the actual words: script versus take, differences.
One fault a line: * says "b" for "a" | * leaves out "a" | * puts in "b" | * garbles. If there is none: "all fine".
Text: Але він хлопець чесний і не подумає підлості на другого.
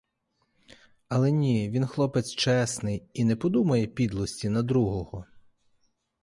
* puts in "ні"